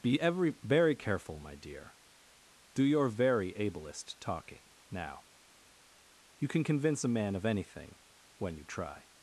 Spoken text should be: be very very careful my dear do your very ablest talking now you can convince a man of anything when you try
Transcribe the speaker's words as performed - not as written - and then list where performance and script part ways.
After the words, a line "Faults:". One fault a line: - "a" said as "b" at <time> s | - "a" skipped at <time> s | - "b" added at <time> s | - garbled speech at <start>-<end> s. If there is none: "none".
be every very careful my dear do your very ablest talking now you can convince a man of anything when you try
Faults:
- "very" said as "every" at 0.2 s